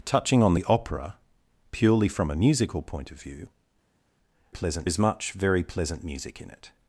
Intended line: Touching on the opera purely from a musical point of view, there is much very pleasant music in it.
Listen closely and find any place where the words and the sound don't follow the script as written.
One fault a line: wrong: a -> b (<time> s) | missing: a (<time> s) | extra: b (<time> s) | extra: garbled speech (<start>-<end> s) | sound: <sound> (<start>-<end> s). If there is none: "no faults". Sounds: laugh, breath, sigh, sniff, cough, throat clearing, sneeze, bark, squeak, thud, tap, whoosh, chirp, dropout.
wrong: there -> pleasant (4.5 s)